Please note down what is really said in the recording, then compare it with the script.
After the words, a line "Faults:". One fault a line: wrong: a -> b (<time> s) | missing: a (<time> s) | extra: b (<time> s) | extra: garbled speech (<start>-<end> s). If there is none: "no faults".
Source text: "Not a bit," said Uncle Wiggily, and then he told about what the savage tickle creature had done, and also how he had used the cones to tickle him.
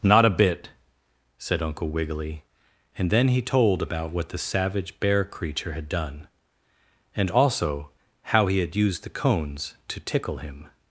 "Not a bit," said Uncle Wiggily, and then he told about what the savage bear creature had done, and also how he had used the cones to tickle him.
Faults:
wrong: tickle -> bear (5.0 s)